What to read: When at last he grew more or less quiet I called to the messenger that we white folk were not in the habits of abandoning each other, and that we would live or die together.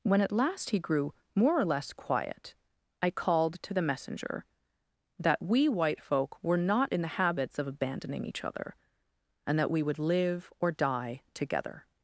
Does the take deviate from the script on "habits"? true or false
false